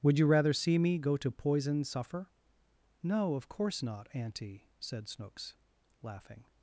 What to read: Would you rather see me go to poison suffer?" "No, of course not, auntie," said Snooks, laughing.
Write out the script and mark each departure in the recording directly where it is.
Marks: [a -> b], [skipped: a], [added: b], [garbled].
Would you rather see me go to poison suffer?" "No, of course not, auntie," said Snooks, laughing.